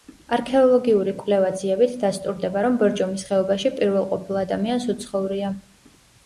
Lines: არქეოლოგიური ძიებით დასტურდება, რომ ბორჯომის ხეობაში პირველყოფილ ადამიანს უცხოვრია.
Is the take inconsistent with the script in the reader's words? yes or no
yes